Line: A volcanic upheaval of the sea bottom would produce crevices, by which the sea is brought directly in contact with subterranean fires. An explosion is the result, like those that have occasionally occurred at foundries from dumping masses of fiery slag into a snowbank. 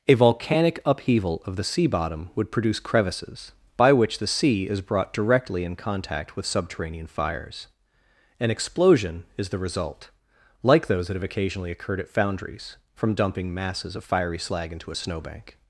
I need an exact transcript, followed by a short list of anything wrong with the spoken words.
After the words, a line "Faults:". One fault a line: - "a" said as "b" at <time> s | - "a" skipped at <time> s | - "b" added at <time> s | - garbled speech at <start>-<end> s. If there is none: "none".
A volcanic upheaval of the sea bottom would produce crevices, by which the sea is brought directly in contact with subterranean fires. An explosion is the result, like those that have occasionally occurred at foundries from dumping masses of fiery slag into a snowbank.
Faults:
none